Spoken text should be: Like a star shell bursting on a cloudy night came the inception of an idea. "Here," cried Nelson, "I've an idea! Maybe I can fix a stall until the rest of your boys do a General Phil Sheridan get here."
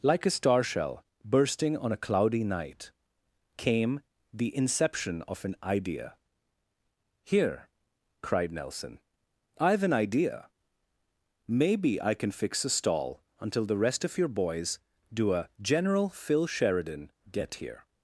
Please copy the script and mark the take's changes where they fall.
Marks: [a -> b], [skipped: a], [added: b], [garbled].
Like a star shell bursting on a cloudy night came the inception of an idea. "Here," cried Nelson, "I've an idea! Maybe I can fix a stall until the rest of your boys do a General Phil Sheridan get here."